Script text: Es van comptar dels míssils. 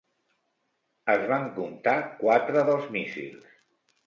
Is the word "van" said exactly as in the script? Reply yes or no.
yes